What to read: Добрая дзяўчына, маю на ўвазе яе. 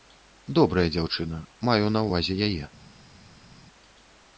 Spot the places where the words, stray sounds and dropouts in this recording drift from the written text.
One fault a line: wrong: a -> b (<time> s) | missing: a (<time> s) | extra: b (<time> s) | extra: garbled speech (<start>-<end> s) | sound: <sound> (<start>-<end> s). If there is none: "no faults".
no faults